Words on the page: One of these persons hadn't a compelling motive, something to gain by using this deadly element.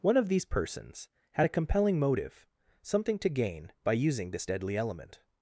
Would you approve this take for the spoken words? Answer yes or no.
no